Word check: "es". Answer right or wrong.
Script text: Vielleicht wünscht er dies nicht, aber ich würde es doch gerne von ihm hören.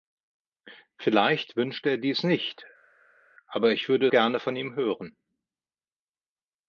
wrong